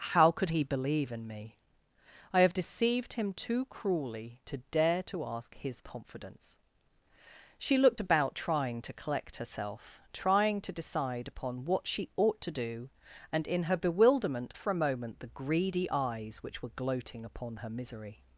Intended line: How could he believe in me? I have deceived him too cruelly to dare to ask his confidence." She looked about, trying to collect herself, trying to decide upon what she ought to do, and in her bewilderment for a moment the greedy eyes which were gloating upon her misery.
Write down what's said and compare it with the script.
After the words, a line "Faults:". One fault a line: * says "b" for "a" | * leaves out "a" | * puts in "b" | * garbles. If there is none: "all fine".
How could he believe in me? I have deceived him too cruelly to dare to ask his confidence." She looked about, trying to collect herself, trying to decide upon what she ought to do, and in her bewilderment for a moment the greedy eyes which were gloating upon her misery.
Faults:
all fine